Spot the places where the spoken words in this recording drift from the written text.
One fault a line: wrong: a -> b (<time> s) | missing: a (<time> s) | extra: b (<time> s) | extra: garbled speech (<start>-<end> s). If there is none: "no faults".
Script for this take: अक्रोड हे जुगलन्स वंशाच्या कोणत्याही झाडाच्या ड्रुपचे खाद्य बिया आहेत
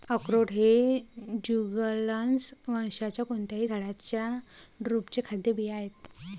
no faults